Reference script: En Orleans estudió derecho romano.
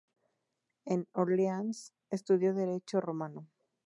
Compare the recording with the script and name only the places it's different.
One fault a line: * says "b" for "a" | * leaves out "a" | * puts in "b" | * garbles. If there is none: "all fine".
all fine